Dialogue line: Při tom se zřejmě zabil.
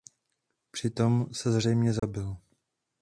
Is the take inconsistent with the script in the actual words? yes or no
no